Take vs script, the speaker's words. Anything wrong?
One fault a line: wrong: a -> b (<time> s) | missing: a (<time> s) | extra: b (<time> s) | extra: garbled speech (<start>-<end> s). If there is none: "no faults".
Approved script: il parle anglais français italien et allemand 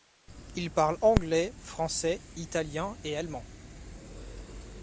no faults